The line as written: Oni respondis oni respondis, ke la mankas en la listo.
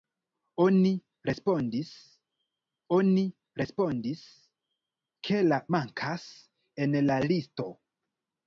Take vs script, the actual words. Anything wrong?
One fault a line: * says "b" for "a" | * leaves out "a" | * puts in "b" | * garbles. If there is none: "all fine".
all fine